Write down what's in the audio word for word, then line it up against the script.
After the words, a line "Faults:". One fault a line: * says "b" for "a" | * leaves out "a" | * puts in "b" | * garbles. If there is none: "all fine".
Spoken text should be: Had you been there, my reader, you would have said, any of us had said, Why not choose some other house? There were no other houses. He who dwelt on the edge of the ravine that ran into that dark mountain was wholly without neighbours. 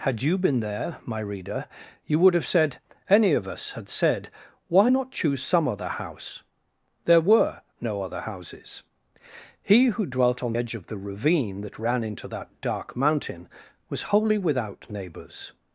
Had you been there, my reader, you would have said, any of us had said, Why not choose some other house? There were no other houses. He who dwelt on edge of the ravine that ran into that dark mountain was wholly without neighbours.
Faults:
* leaves out "the"